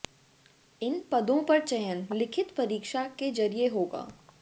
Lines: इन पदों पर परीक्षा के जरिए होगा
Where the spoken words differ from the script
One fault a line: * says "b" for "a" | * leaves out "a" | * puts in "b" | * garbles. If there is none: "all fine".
* puts in "चयन लिखित"